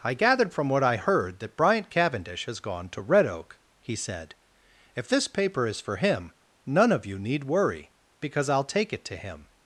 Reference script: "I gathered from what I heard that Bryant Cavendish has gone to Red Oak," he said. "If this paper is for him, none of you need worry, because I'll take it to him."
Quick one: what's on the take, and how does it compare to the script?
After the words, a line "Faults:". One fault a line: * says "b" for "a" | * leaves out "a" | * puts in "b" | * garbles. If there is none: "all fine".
"I gathered from what I heard that Bryant Cavendish has gone to Red Oak," he said. "If this paper is for him, none of you need worry, because I'll take it to him."
Faults:
all fine